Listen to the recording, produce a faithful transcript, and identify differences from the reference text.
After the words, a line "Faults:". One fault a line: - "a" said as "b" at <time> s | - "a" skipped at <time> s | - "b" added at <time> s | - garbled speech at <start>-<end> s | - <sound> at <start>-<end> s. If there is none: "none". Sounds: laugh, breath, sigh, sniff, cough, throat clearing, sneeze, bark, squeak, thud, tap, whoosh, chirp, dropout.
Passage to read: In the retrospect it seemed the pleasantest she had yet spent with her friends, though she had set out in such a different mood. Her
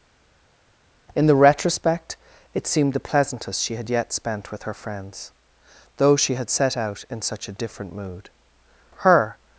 In the retrospect it seemed the pleasantest she had yet spent with her friends, though she had set out in such a different mood. Her
Faults:
none